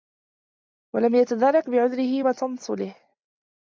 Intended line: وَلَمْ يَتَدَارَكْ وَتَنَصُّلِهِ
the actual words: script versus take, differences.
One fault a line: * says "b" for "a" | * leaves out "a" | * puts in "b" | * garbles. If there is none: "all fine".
* puts in "بِعُذْرِهِ"